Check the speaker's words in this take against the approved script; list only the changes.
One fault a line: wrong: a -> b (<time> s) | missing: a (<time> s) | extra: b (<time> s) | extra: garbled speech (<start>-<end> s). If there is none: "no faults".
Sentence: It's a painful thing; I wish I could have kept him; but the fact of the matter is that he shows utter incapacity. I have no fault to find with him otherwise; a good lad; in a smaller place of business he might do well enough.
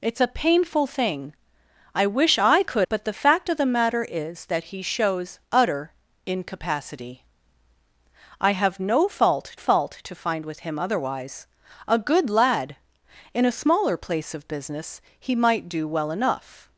missing: have kept him (2.9 s)
extra: fault (9.5 s)